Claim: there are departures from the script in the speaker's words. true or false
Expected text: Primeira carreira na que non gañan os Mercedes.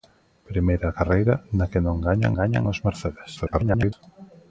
true